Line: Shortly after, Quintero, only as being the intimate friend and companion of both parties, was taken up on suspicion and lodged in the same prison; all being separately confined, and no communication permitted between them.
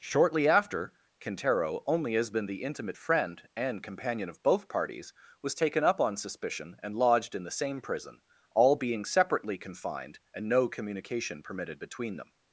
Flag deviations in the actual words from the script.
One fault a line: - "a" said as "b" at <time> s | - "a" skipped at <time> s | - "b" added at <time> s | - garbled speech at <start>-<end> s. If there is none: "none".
- "being" said as "been" at 2.3 s